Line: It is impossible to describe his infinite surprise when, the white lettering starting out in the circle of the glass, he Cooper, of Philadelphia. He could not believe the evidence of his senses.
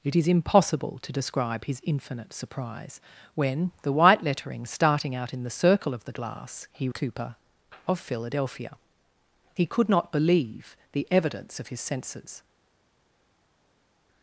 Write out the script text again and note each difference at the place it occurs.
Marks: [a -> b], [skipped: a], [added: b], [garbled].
It is impossible to describe his infinite surprise when, the white lettering starting out in the circle of the glass, he Cooper, of Philadelphia. He could not believe the evidence of his senses.